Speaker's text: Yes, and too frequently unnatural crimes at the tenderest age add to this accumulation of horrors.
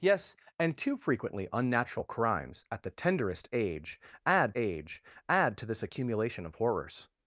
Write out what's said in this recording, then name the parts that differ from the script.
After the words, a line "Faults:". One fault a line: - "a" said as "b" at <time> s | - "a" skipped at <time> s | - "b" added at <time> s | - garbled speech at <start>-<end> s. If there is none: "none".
Yes, and too frequently unnatural crimes at the tenderest age add age add to this accumulation of horrors.
Faults:
- "age add" added at 4.5 s